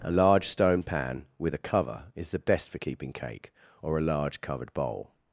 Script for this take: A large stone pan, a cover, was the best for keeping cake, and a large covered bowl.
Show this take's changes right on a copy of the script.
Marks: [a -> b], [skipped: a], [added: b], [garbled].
A large stone pan, [added: with] a cover, [was -> is] the best for keeping cake, [and -> or] a large covered bowl.